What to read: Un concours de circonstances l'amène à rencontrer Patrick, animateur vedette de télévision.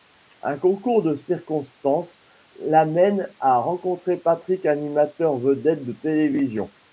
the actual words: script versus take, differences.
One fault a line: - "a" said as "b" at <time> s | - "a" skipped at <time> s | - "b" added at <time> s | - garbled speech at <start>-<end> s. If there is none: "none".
none